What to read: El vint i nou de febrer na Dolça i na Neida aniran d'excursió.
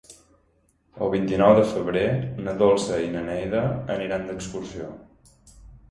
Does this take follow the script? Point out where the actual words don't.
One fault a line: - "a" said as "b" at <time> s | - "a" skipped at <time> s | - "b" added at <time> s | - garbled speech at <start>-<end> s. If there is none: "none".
none